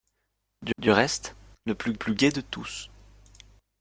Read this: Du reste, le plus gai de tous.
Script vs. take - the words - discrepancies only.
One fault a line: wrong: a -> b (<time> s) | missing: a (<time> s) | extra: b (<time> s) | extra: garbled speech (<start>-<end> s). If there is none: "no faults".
extra: du (0.8 s)
extra: plus (1.9 s)